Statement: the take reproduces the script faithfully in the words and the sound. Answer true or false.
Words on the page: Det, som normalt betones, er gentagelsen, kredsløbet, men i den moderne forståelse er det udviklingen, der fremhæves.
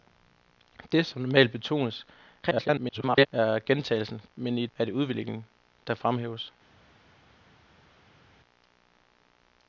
false